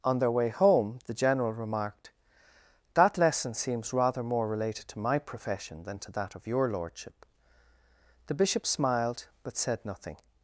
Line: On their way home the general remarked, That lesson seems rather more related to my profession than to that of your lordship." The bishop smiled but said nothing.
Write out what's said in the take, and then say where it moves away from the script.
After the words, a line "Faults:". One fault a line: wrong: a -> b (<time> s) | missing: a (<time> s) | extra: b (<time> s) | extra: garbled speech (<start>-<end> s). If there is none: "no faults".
On their way home the general remarked, That lesson seems rather more related to my profession than to that of your lordship." The bishop smiled but said nothing.
Faults:
no faults